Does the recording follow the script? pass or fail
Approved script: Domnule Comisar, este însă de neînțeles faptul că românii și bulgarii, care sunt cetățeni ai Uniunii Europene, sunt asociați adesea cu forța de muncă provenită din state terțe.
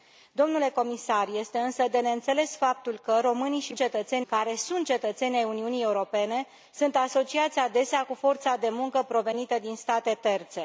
fail